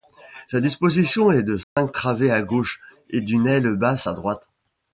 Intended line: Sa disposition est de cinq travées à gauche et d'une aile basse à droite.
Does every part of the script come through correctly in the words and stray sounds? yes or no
no